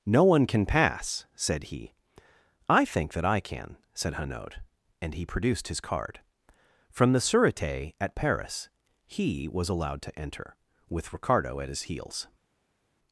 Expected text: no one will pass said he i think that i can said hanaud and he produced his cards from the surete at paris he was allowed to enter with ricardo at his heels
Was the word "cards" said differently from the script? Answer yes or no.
yes